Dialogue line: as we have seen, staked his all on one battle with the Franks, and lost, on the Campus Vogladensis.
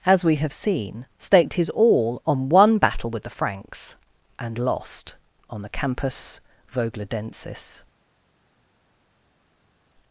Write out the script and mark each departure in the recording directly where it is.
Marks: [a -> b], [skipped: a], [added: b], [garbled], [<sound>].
as we have seen, staked his all on one battle with the Franks, and lost, on the Campus Vogladensis.